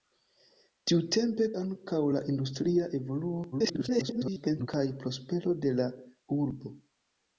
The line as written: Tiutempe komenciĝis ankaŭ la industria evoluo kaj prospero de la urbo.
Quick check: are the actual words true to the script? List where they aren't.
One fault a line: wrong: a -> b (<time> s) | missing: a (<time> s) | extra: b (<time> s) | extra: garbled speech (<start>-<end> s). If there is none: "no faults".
missing: komenciĝis (1.5 s)
extra: garbled speech (3.5-4.7 s)